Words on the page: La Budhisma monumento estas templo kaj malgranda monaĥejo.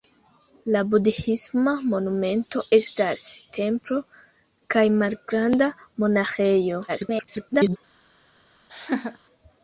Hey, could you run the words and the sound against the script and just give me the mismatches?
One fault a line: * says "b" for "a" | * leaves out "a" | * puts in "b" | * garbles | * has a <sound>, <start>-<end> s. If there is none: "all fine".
* garbles
* has a laugh, 8.7-9.2 s